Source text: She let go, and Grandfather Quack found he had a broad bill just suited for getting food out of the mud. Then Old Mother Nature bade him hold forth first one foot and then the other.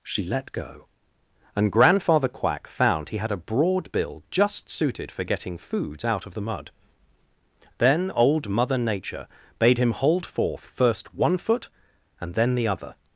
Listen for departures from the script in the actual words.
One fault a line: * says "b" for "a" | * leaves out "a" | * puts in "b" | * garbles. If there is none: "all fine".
* says "foods" for "food"